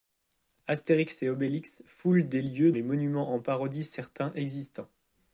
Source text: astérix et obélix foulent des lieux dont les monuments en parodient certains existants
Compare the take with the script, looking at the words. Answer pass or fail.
fail